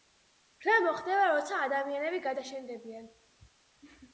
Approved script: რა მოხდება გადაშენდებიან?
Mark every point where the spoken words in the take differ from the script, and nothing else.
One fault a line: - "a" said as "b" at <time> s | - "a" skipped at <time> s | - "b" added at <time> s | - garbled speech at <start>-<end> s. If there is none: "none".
- "როცა ადამიანები" added at 1.3 s